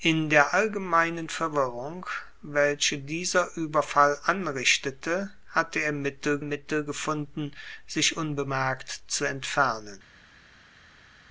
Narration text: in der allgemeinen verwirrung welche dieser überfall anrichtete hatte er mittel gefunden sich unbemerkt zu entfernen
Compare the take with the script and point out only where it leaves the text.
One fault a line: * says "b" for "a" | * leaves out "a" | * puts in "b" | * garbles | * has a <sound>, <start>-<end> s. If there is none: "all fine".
* puts in "mittel"